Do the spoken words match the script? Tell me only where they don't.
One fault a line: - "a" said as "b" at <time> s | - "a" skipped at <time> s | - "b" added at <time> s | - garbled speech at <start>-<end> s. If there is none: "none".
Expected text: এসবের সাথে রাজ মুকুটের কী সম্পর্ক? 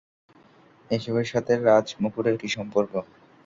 none